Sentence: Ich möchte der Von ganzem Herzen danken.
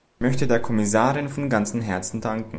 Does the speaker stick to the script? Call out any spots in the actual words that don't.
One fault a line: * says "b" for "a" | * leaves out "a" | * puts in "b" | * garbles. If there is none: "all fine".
* puts in "Kommissarin"